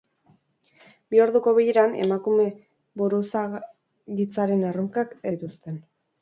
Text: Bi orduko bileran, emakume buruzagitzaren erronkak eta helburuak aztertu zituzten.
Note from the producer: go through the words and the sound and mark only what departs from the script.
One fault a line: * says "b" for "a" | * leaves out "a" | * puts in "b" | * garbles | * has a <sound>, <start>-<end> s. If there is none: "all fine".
* leaves out "eta helburuak aztertu"